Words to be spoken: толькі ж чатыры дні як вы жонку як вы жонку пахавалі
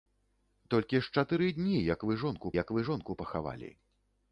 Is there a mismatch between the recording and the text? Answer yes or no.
no